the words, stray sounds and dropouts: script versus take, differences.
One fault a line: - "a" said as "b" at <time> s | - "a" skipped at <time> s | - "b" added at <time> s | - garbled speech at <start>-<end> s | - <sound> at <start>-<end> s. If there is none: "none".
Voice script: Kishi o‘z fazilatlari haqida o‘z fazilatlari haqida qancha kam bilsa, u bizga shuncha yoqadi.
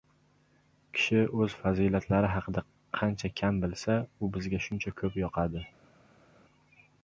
- "o‘z fazilatlari haqida" skipped at 2.6 s
- "ko‘p" added at 5.0 s